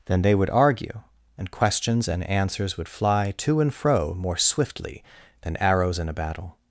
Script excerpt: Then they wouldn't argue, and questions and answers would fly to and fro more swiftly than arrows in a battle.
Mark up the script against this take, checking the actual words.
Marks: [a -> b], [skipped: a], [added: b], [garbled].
Then they [wouldn't -> would] argue, and questions and answers would fly to and fro more swiftly than arrows in a battle.